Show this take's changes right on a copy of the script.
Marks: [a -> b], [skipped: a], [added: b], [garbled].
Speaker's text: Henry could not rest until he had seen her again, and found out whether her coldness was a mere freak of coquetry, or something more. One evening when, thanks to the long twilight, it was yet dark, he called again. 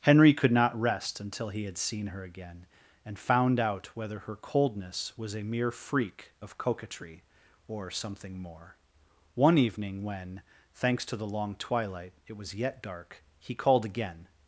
Henry could not rest until he had seen her again, and found out whether her coldness was a mere freak of coquetry, or something more. One evening when, thanks to the long twilight, it was yet dark, he called again.